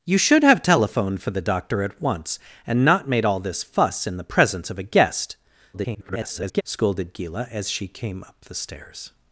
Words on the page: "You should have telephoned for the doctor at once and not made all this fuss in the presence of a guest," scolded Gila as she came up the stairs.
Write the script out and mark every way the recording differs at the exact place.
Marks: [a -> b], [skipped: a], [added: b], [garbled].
"You should have telephoned for the doctor at once and not made all this fuss in the presence of a guest," [garbled] scolded Gila as she came up the stairs.